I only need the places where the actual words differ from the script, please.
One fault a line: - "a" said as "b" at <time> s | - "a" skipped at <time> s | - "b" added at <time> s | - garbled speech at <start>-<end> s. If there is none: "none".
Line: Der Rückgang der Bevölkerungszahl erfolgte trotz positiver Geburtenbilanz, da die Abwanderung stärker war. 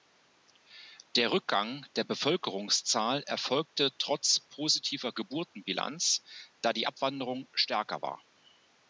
none